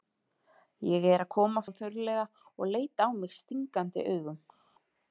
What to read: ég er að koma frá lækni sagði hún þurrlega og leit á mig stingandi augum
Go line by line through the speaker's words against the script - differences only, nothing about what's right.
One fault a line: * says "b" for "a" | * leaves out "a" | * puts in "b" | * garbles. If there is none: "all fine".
* leaves out "frá lækni sagði"